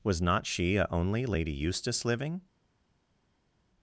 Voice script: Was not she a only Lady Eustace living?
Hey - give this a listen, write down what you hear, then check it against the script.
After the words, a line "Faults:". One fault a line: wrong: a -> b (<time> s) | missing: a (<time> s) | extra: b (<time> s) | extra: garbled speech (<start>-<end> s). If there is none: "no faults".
Was not she a only Lady Eustace living?
Faults:
no faults